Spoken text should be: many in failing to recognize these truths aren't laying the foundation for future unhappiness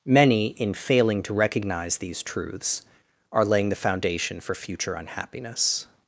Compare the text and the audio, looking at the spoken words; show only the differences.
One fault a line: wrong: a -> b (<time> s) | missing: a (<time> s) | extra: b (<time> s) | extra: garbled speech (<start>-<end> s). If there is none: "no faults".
wrong: aren't -> are (3.3 s)